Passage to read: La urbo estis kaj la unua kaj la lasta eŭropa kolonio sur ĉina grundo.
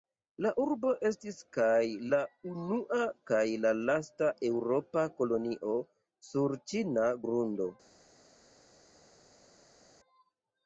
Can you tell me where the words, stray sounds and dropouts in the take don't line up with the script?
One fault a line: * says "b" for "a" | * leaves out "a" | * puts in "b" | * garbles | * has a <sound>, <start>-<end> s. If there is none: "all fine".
all fine